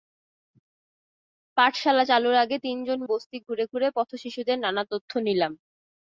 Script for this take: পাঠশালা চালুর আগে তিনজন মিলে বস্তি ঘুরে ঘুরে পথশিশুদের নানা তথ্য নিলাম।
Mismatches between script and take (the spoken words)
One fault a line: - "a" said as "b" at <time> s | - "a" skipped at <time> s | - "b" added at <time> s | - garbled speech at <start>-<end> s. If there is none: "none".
- "মিলে" skipped at 3.0 s